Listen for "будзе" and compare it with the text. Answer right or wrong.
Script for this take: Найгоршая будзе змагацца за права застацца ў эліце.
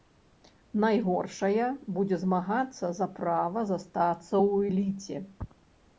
right